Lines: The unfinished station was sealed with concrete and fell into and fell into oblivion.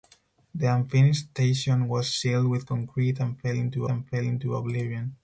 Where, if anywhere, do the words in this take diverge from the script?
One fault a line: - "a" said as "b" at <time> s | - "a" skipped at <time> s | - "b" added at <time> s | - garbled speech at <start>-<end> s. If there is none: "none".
none